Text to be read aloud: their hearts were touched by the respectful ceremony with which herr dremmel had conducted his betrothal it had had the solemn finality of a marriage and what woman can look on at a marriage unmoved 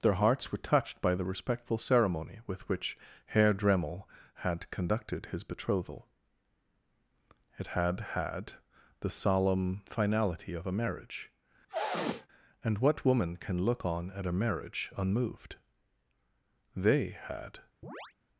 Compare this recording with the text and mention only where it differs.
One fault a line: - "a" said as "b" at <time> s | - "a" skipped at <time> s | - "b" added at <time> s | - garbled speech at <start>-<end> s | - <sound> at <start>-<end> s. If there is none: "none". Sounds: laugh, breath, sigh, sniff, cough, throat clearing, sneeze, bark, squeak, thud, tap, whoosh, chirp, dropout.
- sniff at 11.7-12.3 s
- "they had" added at 16.8 s
- chirp at 17.8-18.1 s